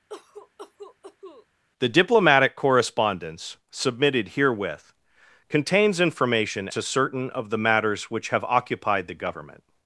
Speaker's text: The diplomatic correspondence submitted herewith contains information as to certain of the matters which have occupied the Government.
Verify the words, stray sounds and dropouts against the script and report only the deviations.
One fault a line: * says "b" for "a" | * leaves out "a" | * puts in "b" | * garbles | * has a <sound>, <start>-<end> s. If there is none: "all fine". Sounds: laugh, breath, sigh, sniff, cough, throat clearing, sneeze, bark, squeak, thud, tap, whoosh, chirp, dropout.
* has a cough, 0.1-1.5 s
* leaves out "as"